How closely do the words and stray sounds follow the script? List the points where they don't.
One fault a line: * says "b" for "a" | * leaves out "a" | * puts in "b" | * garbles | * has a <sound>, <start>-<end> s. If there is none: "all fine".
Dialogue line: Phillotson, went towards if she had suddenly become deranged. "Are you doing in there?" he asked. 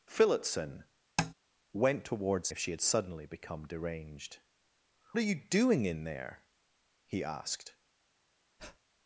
* has a tap, 1.2-1.3 s
* has a breath, 8.6-8.8 s